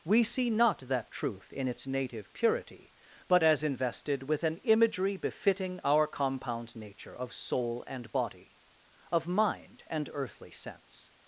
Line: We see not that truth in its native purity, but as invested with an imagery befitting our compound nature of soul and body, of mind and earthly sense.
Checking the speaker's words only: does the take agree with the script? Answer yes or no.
yes